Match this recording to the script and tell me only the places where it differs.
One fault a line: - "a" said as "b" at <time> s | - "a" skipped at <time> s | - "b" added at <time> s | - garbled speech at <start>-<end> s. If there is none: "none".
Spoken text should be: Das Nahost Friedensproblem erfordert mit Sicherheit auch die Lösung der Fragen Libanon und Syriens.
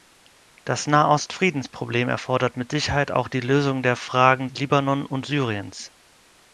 none